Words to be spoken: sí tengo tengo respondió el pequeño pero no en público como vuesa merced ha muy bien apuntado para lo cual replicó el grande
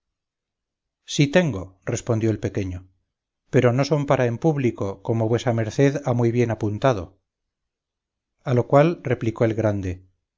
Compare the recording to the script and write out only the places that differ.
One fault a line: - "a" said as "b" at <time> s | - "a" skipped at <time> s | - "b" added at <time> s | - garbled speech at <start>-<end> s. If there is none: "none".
- "tengo" skipped at 1.8 s
- "son para" added at 3.8 s
- "para" said as "a" at 8.4 s